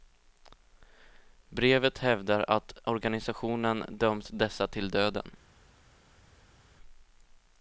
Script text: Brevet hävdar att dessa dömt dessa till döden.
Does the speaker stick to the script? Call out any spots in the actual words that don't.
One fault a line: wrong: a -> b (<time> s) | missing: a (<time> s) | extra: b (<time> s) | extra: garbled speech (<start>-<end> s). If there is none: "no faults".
wrong: dessa -> organisationen (2.8 s)